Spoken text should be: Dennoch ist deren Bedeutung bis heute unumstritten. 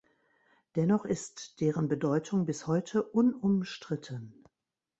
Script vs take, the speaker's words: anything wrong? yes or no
no